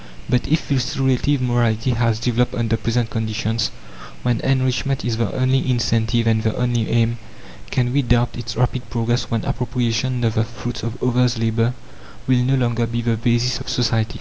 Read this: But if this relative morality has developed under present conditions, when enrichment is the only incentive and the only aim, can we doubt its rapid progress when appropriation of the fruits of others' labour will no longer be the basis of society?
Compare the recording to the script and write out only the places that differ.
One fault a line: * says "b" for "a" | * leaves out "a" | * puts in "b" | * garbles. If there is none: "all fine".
all fine